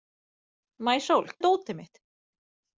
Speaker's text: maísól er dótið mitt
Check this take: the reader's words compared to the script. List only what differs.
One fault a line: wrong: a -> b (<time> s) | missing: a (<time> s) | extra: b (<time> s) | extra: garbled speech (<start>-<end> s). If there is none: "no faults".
no faults